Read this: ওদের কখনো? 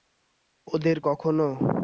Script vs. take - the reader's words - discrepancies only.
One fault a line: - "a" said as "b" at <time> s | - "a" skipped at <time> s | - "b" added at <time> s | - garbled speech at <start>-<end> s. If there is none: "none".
none